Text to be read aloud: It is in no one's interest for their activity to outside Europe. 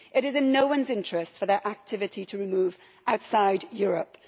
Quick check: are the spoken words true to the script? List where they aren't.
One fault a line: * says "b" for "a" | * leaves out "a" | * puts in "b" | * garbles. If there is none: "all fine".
* puts in "move"